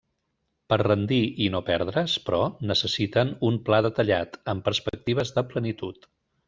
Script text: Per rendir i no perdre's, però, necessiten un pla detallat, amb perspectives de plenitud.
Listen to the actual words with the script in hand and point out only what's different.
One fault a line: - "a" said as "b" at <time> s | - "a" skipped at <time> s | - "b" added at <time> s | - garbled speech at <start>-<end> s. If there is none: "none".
none